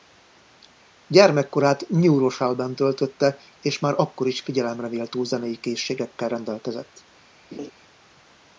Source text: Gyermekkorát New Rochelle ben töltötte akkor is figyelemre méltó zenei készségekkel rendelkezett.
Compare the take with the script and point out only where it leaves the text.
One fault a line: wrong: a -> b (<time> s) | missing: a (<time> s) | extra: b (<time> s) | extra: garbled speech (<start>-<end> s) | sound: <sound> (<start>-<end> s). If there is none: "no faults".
extra: és már (3.6 s)
sound: laugh (7.5-7.7 s)